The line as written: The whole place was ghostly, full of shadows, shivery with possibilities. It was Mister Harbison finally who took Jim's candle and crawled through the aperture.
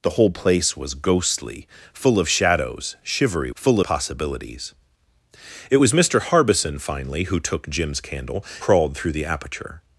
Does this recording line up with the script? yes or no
no